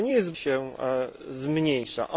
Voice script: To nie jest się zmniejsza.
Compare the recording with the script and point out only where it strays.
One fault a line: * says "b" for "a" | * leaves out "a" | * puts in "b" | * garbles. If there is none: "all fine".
all fine